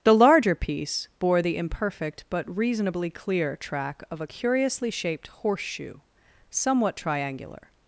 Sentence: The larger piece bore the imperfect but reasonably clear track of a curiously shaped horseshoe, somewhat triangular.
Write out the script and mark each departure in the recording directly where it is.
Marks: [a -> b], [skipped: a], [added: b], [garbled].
The larger piece bore the imperfect but reasonably clear track of a curiously shaped horseshoe, somewhat triangular.